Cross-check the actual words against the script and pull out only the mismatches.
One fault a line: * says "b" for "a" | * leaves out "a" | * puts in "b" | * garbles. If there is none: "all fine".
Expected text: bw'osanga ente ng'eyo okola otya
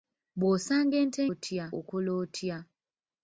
* says "otya" for "ng'eyo"